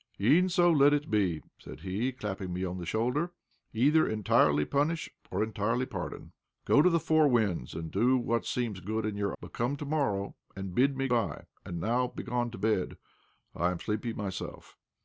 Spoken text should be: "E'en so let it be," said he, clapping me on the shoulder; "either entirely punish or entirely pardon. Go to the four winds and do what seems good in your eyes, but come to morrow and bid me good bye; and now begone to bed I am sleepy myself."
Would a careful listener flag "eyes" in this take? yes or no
yes